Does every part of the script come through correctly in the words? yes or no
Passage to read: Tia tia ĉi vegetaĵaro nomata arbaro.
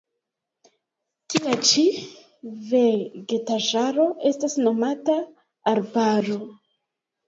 no